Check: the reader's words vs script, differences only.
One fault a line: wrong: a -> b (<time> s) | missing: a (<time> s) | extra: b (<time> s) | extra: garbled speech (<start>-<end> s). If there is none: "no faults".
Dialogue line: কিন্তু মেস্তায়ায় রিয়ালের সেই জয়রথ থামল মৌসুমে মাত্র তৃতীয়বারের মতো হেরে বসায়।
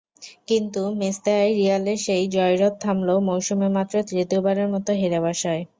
no faults